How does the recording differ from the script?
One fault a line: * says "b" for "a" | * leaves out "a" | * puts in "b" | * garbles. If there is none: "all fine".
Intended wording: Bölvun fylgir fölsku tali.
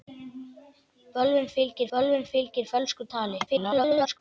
* puts in "bölvun fylgir"
* garbles